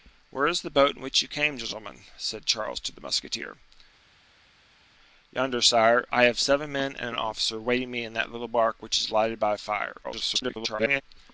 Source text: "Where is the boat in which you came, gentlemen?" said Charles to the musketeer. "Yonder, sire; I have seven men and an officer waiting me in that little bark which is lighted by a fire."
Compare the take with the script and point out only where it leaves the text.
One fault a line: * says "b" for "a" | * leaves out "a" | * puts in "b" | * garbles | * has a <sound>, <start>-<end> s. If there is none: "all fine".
* garbles